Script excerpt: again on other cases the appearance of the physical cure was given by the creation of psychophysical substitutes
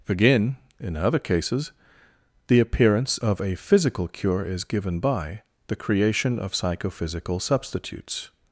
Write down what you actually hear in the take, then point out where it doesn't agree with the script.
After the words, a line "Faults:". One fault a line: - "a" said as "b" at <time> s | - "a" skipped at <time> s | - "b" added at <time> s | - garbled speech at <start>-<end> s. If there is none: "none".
again in other cases the appearance of a physical cure is given by the creation of psychophysical substitutes
Faults:
- "on" said as "in" at 0.8 s
- "the" said as "a" at 3.4 s
- "was" said as "is" at 4.5 s